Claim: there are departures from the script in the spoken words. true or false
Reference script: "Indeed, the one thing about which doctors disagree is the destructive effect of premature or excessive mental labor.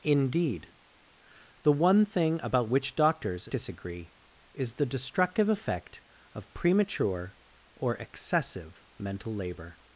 false